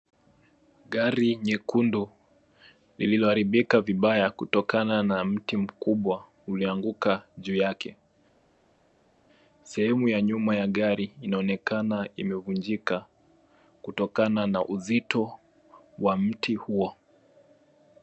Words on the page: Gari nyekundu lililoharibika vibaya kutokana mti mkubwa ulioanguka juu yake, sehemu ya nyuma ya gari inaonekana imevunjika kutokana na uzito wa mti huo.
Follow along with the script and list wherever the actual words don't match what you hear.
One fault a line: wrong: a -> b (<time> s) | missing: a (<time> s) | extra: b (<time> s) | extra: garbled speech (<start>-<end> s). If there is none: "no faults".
extra: na (5.0 s)